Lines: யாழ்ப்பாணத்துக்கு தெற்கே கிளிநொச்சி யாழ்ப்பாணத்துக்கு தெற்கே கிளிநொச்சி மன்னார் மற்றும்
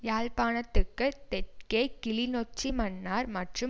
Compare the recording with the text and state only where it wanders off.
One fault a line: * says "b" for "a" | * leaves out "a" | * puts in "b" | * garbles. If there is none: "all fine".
* leaves out "யாழ்ப்பாணத்துக்கு தெற்கே கிளிநொச்சி"